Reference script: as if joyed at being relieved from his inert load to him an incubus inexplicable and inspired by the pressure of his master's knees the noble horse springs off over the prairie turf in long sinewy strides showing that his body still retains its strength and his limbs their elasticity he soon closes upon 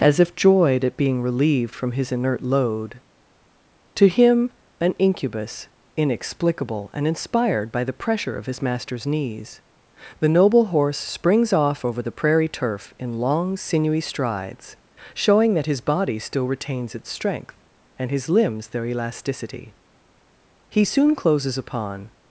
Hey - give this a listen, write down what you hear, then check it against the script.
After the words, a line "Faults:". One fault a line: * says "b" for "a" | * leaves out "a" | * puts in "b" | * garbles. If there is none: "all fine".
as if joyed at being relieved from his inert load to him an incubus inexplicable and inspired by the pressure of his master's knees the noble horse springs off over the prairie turf in long sinewy strides showing that his body still retains its strength and his limbs their elasticity he soon closes upon
Faults:
all fine